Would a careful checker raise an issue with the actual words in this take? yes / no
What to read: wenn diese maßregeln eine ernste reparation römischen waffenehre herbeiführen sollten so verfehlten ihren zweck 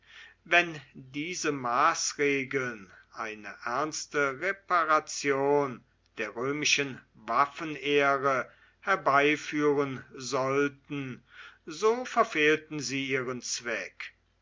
yes